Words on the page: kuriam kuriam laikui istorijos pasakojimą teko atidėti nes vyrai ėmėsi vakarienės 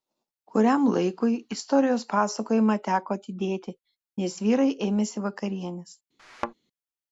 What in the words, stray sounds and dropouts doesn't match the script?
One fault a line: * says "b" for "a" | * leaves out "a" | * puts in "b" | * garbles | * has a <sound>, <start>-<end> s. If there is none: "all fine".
* leaves out "kuriam"
* has a thud, 6.2-6.5 s